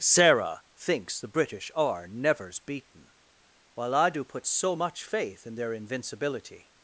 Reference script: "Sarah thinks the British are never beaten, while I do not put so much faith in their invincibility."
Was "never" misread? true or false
true